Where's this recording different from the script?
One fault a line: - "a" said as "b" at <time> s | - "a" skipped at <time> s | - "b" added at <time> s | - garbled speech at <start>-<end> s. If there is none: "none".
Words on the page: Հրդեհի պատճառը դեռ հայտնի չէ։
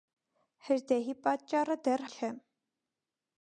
- "հայտնի" skipped at 2.0 s